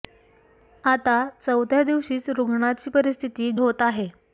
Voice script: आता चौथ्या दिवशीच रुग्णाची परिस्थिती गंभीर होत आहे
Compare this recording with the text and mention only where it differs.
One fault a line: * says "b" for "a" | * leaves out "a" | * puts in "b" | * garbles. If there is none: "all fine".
* leaves out "गंभीर"